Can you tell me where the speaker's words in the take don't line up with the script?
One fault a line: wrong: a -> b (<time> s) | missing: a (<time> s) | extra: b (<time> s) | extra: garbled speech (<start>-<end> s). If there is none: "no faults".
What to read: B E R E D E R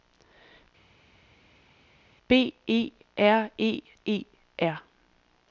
missing: D (3.8 s)